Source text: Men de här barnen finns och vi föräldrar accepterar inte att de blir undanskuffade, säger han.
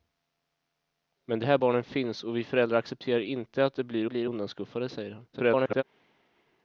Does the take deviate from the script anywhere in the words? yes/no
yes